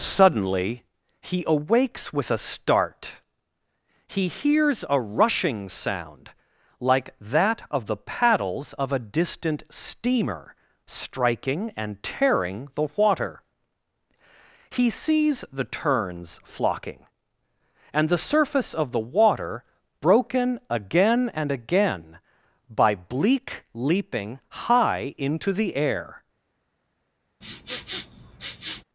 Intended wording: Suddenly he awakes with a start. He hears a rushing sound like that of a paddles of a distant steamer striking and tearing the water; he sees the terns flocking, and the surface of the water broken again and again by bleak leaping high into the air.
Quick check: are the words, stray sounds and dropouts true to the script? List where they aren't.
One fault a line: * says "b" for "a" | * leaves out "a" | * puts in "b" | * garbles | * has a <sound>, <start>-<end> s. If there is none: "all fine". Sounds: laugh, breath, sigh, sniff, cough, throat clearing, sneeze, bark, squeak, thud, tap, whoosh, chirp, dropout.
* says "the" for "a"
* has a sniff, 27.4-28.8 s